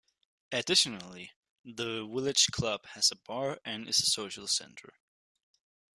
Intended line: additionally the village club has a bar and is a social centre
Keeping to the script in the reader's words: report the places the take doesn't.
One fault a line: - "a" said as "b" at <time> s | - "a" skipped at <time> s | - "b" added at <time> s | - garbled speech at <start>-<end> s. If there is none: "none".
none